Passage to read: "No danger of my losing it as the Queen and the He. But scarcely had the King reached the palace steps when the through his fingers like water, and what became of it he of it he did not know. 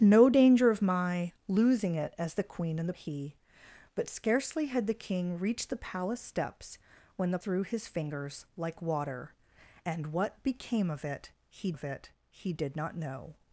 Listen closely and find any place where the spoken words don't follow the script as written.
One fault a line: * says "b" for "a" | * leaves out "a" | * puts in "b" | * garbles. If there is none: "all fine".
all fine